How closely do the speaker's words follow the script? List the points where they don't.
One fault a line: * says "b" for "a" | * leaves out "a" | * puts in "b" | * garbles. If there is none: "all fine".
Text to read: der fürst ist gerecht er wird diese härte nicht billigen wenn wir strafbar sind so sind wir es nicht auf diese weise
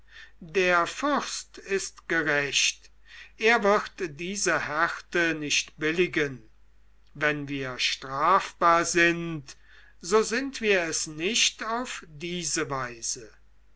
all fine